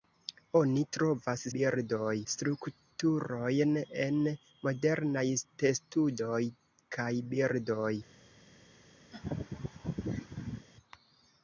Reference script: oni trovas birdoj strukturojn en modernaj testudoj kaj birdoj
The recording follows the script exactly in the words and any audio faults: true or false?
false